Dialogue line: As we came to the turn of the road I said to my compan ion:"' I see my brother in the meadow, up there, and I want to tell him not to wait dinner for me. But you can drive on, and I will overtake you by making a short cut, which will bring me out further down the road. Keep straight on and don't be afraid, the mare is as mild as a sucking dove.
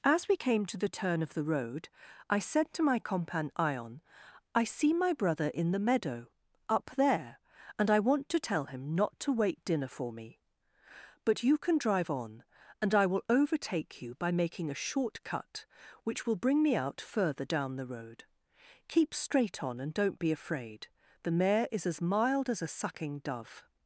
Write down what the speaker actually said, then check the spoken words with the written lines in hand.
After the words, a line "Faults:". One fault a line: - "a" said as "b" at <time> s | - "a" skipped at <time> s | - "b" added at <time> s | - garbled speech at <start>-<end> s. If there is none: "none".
As we came to the turn of the road I said to my compan ion:"' I see my brother in the meadow, up there, and I want to tell him not to wait dinner for me. But you can drive on, and I will overtake you by making a short cut, which will bring me out further down the road. Keep straight on and don't be afraid, the mare is as mild as a sucking dove.
Faults:
none